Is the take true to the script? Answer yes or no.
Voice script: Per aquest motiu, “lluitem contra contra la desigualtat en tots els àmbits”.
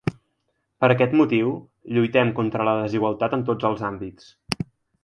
no